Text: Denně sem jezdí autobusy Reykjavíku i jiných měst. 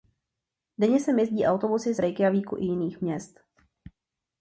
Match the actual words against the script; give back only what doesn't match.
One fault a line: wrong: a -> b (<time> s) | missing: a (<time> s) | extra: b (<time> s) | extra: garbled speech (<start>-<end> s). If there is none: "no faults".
no faults